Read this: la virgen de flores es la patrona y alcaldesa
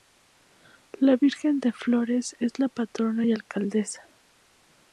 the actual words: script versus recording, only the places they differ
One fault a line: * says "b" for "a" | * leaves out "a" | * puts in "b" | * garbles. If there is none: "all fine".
all fine